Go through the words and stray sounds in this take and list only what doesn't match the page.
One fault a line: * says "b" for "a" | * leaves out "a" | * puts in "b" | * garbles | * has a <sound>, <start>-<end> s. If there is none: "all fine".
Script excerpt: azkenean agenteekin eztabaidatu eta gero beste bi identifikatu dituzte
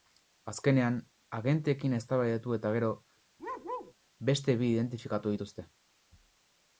* has a bark, 3.4-3.9 s